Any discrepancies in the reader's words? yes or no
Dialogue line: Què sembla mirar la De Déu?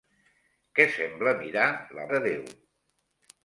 no